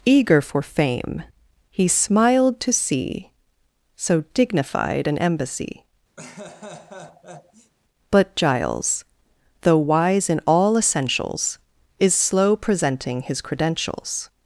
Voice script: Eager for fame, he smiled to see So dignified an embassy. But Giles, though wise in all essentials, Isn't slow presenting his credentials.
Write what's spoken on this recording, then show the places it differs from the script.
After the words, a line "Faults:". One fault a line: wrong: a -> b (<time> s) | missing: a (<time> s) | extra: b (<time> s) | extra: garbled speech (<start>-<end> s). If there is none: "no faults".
Eager for fame, he smiled to see So dignified an embassy. But Giles, though wise in all essentials, Is slow presenting his credentials.
Faults:
wrong: Isn't -> Is (12.0 s)